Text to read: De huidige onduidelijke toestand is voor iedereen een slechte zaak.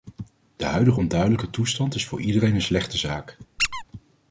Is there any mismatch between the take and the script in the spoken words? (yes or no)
no